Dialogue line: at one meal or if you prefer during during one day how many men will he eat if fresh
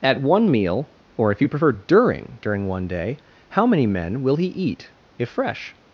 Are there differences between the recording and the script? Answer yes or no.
no